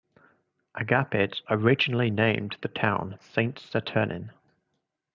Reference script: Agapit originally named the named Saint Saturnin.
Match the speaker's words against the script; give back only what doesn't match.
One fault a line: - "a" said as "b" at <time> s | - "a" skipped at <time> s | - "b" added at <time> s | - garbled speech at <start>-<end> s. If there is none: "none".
- "named" said as "town" at 2.7 s